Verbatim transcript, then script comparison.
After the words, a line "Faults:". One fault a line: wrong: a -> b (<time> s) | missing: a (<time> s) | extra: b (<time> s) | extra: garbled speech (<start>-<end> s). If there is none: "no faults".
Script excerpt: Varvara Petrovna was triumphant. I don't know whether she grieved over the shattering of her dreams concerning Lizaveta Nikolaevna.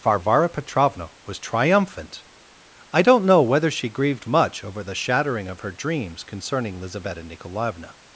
Varvara Petrovna was triumphant. I don't know whether she grieved much over the shattering of her dreams concerning Lizaveta Nikolaevna.
Faults:
extra: much (4.2 s)